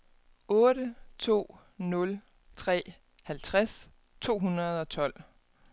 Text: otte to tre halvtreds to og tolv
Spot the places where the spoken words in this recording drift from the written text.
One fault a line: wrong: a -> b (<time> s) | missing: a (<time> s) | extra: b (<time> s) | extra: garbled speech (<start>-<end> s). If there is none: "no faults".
extra: nul (1.8 s)
extra: hundrede (4.4 s)